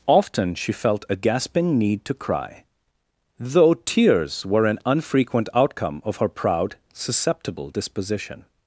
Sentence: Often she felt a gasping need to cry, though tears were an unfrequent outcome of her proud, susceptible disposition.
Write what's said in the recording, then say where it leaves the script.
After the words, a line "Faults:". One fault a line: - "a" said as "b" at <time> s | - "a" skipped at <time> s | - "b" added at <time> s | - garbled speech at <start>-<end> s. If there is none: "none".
Often she felt a gasping need to cry, though tears were an unfrequent outcome of her proud, susceptible disposition.
Faults:
none